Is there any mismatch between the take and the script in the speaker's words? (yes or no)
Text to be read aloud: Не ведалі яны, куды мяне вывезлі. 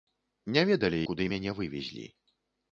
yes